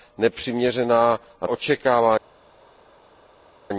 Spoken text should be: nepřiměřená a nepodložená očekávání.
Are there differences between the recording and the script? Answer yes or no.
yes